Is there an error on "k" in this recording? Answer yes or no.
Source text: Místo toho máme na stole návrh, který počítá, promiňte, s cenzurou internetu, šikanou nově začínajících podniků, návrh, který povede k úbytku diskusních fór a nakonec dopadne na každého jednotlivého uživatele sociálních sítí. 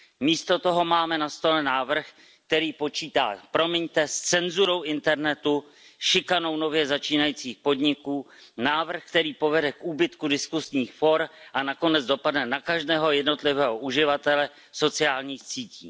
no